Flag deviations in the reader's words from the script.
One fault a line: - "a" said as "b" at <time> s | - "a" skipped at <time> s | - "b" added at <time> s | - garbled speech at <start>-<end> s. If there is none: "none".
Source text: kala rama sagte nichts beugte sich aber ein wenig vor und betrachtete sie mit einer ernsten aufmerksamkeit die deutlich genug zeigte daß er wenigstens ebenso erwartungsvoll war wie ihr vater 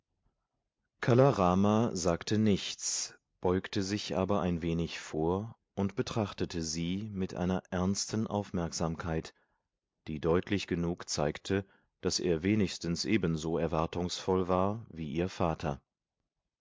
none